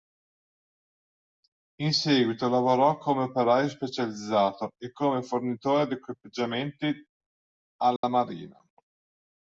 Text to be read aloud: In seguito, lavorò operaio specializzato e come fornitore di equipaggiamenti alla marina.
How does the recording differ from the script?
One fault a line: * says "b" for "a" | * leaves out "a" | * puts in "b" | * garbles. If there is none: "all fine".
* puts in "come"